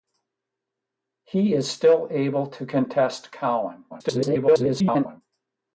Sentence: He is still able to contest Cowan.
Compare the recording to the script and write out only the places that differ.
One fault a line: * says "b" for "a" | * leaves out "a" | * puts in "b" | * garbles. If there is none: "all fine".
* garbles